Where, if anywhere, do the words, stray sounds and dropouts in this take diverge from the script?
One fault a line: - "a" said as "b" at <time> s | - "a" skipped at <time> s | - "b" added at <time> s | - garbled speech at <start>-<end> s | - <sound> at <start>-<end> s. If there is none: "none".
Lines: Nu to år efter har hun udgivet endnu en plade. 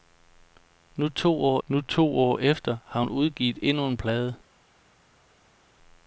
- "nu to år" added at 1.7 s